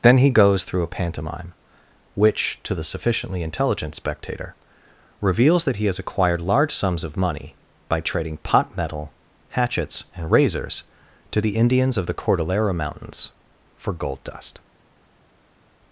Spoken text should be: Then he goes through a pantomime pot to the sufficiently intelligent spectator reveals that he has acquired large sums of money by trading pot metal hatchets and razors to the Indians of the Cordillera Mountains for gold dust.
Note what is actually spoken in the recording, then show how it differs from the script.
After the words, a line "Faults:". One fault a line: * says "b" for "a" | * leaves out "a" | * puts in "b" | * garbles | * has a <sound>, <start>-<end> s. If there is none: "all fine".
Then he goes through a pantomime which to the sufficiently intelligent spectator reveals that he has acquired large sums of money by trading pot metal hatchets and razors to the Indians of the Cordillera Mountains for gold dust.
Faults:
* says "which" for "pot"